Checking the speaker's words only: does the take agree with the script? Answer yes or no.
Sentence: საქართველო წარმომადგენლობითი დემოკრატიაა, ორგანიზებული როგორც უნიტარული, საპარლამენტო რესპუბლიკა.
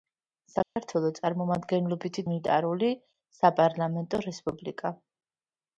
no